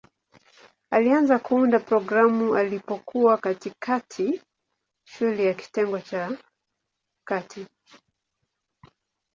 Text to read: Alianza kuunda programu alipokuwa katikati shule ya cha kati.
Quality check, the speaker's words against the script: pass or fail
fail